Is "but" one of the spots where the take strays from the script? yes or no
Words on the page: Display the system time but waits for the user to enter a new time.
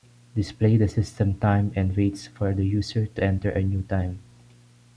yes